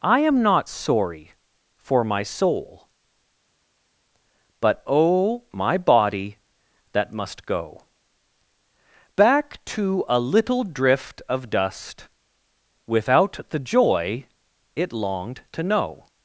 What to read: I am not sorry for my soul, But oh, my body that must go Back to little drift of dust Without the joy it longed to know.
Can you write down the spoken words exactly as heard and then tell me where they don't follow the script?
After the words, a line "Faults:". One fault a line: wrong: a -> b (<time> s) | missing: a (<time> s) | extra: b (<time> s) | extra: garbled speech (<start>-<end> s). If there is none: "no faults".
I am not sorry for my soul, But oh, my body that must go Back to a little drift of dust Without the joy it longed to know.
Faults:
extra: a (10.1 s)